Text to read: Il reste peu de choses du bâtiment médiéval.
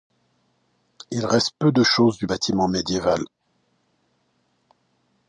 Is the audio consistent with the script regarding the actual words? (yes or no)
yes